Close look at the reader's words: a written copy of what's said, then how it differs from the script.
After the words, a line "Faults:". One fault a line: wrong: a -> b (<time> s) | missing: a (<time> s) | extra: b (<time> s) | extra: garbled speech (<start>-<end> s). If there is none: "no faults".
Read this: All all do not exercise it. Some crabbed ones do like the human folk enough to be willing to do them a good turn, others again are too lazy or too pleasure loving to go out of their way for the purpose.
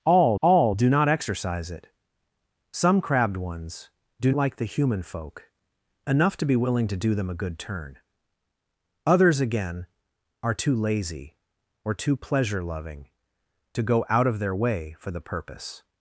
All all do not exercise it. Some crabbed ones do like the human folk enough to be willing to do them a good turn, others again are too lazy or too pleasure loving to go out of their way for the purpose.
Faults:
no faults